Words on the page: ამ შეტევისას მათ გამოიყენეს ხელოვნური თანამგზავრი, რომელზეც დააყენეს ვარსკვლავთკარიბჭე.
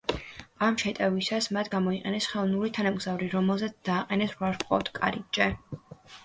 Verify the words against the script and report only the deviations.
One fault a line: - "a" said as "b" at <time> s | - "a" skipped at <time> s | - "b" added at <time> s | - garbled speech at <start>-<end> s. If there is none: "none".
none